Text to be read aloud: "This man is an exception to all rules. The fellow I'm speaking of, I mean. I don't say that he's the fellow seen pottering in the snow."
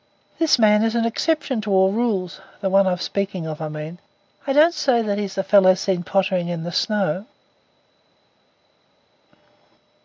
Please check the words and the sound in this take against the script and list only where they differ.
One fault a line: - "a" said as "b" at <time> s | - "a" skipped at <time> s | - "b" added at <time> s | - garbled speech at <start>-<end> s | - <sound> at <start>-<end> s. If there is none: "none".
- "fellow" said as "one" at 2.7 s